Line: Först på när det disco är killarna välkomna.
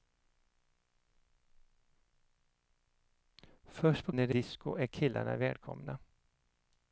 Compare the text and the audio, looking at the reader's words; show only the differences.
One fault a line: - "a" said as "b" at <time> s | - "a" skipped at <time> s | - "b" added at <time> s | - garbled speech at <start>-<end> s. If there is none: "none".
none